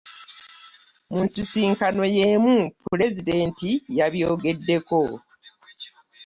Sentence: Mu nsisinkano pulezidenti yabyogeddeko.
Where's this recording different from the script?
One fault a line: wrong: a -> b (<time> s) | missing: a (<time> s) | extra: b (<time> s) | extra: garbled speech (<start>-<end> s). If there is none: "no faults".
extra: y'emu (2.2 s)